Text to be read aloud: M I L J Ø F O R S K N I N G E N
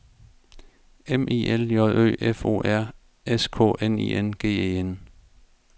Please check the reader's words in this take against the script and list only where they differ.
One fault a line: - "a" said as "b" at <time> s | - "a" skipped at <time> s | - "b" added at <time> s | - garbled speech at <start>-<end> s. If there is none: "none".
none